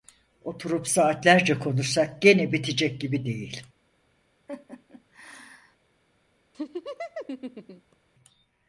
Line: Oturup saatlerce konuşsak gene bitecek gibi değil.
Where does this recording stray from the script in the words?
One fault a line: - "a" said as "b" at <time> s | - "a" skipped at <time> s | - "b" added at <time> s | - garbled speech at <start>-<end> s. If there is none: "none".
none